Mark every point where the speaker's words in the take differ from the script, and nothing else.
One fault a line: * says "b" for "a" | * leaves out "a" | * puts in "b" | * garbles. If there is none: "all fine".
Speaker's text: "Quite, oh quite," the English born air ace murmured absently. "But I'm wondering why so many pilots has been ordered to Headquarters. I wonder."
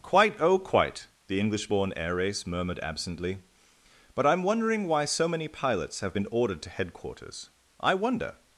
* says "have" for "has"